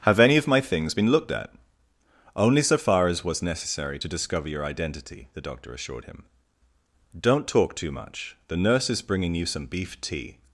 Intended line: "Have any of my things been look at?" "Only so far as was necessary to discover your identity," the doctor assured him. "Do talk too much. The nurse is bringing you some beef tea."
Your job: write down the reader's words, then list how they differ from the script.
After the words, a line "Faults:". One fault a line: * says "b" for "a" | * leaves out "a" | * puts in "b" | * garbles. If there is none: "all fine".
"Have any of my things been looked at?" "Only so far as was necessary to discover your identity," the doctor assured him. "Don't talk too much. The nurse is bringing you some beef tea."
Faults:
* says "looked" for "look"
* says "Don't" for "Do"